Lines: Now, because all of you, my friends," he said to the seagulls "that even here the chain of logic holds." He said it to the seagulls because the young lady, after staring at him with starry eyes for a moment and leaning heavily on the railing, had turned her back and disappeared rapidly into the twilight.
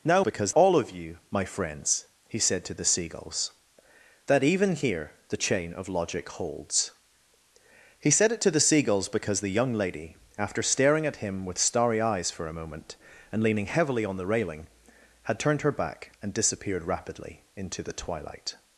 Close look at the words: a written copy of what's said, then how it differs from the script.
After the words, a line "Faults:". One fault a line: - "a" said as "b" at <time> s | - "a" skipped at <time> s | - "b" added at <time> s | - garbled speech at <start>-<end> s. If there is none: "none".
Now, because all of you, my friends," he said to the seagulls "that even here the chain of logic holds." He said it to the seagulls because the young lady, after staring at him with starry eyes for a moment and leaning heavily on the railing, had turned her back and disappeared rapidly into the twilight.
Faults:
none